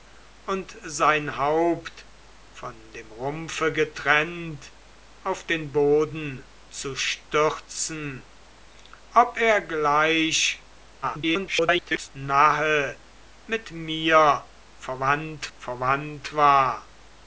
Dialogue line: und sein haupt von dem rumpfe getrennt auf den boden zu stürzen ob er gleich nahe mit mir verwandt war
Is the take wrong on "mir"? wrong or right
right